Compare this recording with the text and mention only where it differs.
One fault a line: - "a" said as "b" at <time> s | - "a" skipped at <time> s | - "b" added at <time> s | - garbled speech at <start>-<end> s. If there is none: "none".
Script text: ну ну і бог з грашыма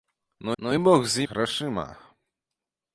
none